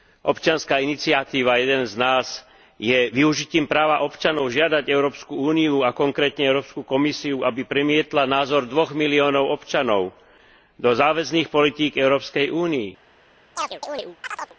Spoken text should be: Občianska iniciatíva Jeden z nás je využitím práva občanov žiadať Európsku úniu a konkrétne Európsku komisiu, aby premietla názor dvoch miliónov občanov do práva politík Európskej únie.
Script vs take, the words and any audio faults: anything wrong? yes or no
yes